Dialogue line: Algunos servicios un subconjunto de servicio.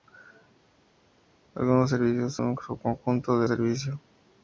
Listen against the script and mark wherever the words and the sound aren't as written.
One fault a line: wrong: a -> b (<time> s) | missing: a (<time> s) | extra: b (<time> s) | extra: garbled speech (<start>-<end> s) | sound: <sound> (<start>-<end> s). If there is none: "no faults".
no faults